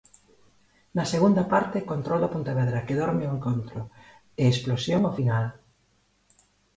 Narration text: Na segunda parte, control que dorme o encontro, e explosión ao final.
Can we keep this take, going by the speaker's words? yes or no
no